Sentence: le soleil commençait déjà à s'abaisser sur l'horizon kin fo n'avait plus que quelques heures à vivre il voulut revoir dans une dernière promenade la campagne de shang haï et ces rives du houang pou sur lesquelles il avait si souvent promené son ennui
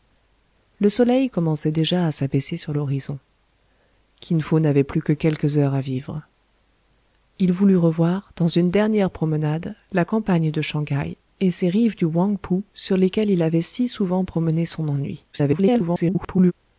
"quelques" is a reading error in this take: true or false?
false